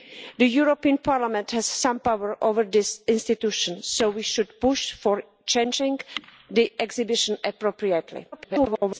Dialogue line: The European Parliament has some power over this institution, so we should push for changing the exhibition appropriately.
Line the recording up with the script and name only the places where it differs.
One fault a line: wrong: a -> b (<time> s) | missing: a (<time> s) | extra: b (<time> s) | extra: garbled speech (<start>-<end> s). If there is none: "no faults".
extra: garbled speech (8.3-9.0 s)